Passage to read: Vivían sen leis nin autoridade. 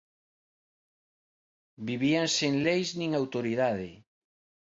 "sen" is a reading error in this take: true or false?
false